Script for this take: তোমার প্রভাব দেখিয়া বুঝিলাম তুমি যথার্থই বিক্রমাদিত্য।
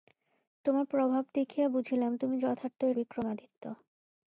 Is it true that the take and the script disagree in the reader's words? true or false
false